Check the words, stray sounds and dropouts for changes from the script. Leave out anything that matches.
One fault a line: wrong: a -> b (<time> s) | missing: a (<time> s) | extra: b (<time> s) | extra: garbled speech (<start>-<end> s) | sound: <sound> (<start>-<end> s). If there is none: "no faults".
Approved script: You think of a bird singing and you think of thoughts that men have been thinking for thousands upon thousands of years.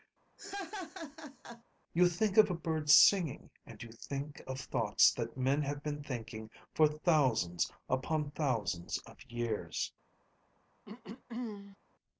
sound: laugh (0.4-1.6 s)
sound: throat clearing (10.8-11.8 s)